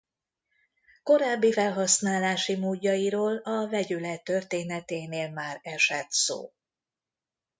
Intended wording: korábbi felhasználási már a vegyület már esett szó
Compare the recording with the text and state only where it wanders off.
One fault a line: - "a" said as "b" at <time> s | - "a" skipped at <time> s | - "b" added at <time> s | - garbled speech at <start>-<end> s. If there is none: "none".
- "már" said as "módjairól" at 2.6 s
- "történeténél" added at 4.2 s